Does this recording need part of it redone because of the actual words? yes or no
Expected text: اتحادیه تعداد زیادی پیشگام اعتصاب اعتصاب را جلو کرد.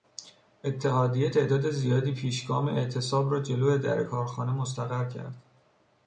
yes